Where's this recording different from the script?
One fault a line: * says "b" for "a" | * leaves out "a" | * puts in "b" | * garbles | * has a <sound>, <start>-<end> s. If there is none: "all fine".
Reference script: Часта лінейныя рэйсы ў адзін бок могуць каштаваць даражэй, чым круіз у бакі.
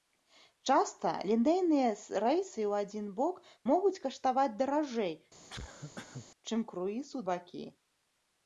* has a cough, 5.4-6.3 s